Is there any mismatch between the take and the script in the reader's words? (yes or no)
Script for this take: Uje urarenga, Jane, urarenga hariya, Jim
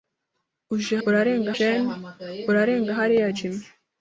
no